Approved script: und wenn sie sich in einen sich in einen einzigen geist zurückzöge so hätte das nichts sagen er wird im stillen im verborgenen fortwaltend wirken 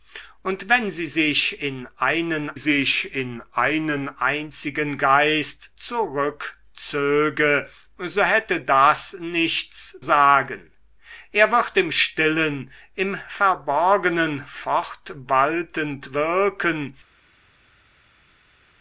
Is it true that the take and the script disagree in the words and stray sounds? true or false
false